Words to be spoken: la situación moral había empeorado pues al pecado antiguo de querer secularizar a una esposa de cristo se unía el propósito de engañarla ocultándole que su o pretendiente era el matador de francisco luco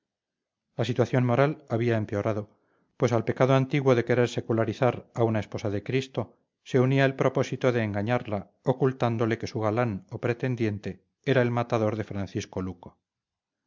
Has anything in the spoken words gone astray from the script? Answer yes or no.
yes